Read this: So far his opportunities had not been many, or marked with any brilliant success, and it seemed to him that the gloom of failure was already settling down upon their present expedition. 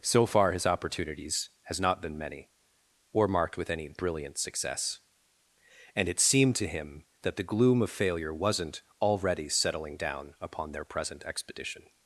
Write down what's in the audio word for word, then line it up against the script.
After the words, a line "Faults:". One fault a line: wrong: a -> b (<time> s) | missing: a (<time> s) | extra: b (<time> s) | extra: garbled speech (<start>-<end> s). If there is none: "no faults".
So far his opportunities has not been many, or marked with any brilliant success, and it seemed to him that the gloom of failure wasn't already settling down upon their present expedition.
Faults:
wrong: had -> has (1.6 s)
wrong: was -> wasn't (8.3 s)